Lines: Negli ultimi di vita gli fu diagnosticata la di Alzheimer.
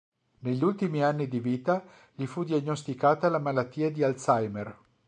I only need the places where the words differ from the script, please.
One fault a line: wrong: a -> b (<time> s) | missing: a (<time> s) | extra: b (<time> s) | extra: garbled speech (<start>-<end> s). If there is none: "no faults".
extra: anni (1.0 s)
extra: malattia (3.4 s)